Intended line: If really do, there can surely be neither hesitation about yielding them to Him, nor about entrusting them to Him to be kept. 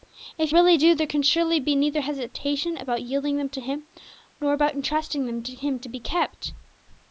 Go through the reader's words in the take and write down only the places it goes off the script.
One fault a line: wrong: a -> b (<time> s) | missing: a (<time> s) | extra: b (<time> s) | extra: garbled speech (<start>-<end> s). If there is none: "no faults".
no faults